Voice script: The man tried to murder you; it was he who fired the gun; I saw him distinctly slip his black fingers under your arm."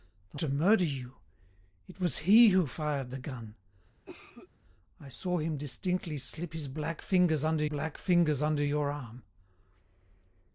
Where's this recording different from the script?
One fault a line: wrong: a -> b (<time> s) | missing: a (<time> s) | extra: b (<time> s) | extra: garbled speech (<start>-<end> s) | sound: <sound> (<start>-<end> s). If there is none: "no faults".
missing: man tried (0.4 s)
sound: cough (4.1-4.5 s)
extra: black fingers under (7.6 s)